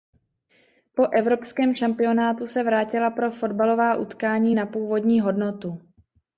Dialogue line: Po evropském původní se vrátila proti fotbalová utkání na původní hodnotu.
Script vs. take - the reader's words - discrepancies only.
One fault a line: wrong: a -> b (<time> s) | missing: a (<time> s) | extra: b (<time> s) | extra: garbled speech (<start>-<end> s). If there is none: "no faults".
wrong: původní -> šampionátu (1.8 s)
wrong: proti -> pro (3.1 s)